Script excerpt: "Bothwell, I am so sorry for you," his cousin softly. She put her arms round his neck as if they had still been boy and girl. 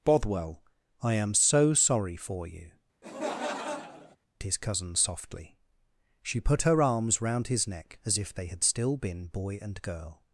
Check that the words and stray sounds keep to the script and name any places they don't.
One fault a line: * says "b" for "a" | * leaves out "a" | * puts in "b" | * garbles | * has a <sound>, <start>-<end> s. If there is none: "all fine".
* has a laugh, 3.0-4.2 s